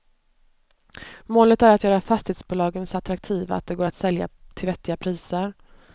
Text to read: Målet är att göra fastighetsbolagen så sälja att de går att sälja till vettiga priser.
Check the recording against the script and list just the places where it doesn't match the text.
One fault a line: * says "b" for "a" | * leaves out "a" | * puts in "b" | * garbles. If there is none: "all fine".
* says "attraktiva" for "sälja"